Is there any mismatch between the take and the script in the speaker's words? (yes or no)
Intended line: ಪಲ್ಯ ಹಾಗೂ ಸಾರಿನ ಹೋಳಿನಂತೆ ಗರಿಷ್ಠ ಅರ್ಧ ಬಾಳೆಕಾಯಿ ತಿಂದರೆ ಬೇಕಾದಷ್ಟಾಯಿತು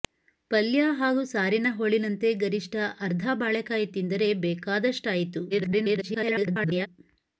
yes